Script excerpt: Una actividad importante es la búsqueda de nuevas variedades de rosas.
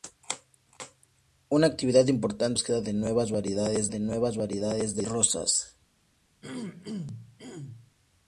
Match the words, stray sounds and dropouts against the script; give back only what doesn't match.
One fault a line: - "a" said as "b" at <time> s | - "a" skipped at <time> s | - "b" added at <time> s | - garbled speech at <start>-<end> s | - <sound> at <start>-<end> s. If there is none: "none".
- "nuevas variedades de" added at 4.0 s
- throat clearing at 6.4-7.9 s